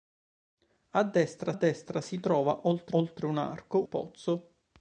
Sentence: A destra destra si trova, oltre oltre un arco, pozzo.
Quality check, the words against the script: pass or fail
pass